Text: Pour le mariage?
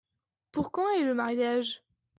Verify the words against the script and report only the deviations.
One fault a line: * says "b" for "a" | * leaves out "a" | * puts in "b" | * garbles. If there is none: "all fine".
* puts in "quand est"